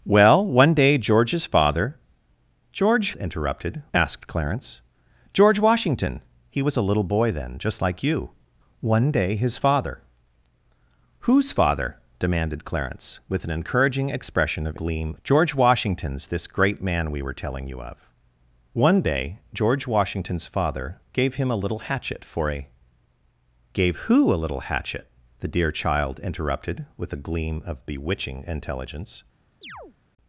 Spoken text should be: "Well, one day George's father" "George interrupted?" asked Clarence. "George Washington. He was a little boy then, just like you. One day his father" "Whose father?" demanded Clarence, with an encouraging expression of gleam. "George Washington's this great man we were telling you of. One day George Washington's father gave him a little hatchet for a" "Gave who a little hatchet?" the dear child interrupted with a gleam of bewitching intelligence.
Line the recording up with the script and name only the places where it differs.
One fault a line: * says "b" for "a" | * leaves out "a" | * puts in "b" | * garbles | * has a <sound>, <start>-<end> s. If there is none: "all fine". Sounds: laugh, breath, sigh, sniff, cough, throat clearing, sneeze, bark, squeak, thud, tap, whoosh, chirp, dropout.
* has a chirp, 29.6-30.0 s